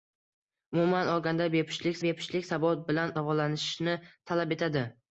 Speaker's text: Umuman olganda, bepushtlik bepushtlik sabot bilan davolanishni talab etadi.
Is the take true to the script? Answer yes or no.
yes